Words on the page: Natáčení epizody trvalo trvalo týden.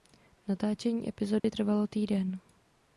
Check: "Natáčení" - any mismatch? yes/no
no